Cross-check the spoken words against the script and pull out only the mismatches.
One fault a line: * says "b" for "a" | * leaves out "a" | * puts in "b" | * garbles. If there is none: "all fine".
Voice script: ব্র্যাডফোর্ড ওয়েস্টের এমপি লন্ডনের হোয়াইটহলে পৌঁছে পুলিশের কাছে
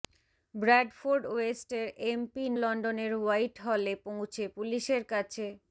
all fine